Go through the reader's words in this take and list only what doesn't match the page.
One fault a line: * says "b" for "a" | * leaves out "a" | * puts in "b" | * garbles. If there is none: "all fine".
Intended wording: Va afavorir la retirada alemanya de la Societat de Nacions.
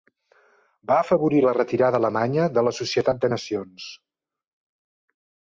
all fine